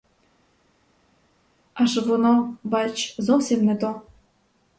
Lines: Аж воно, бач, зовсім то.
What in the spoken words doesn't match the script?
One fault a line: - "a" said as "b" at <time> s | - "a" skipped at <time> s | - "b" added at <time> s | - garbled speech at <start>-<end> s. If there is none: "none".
- "не" added at 3.6 s